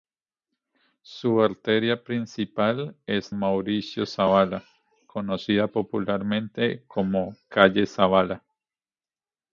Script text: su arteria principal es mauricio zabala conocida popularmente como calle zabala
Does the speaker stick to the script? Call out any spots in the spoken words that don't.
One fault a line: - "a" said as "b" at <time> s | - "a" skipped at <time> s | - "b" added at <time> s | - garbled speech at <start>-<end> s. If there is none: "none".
none